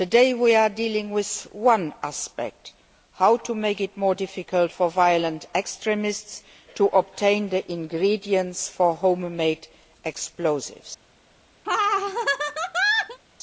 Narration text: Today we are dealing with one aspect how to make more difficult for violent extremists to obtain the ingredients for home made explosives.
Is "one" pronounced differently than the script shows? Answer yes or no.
no